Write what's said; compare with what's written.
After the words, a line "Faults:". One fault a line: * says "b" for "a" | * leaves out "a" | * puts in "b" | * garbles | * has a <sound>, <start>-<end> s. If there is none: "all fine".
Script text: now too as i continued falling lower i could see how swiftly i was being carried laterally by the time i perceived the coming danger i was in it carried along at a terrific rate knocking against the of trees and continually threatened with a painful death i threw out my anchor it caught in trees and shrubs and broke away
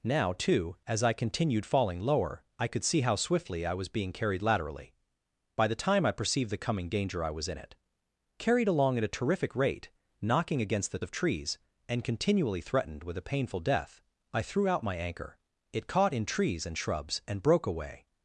now too as i continued falling lower i could see how swiftly i was being carried laterally by the time i perceived the coming danger i was in it carried along at a terrific rate knocking against the of trees and continually threatened with a painful death i threw out my anchor it caught in trees and shrubs and broke away
Faults:
all fine